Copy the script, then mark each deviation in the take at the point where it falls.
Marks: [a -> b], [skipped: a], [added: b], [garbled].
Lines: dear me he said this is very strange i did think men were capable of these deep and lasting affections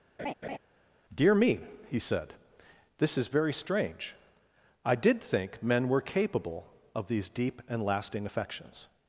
dear me he said this is very strange i did think men were capable of these deep and lasting affections